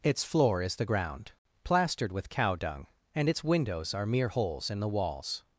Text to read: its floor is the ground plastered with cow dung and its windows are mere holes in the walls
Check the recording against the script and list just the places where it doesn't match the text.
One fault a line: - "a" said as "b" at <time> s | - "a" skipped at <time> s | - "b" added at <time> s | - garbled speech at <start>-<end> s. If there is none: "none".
none